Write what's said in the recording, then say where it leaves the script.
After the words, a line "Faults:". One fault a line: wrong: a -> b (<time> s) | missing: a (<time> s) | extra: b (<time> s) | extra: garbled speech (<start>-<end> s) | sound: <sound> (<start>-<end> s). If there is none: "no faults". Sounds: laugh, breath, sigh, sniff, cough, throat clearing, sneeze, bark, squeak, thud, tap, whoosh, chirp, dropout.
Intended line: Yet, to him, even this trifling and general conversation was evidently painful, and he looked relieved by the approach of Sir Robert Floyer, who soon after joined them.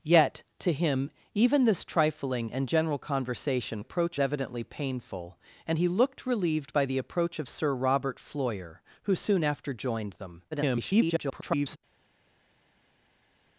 Yet, to him, even this trifling and general conversation approach evidently painful, and he looked relieved by the approach of Sir Robert Floyer, who soon after joined them. [garbled]
Faults:
wrong: was -> approach (3.8 s)
extra: garbled speech (10.5-11.8 s)